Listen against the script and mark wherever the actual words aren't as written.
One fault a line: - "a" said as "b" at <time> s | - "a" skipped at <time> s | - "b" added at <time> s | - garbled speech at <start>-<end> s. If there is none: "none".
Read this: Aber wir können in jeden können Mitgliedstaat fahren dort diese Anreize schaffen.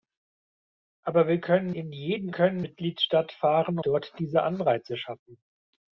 none